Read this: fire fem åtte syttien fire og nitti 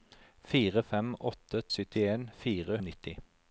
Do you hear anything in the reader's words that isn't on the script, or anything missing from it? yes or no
no